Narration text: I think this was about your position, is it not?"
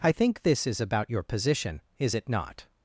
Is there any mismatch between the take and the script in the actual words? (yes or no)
yes